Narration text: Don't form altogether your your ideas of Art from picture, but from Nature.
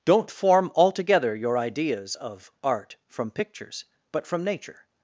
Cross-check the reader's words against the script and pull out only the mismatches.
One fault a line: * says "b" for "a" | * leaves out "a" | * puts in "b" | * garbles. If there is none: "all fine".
* leaves out "your"
* says "pictures" for "picture"